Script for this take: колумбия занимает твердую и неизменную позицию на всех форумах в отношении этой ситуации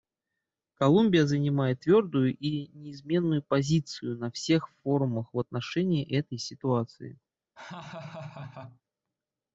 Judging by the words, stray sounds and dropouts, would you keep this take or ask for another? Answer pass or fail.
fail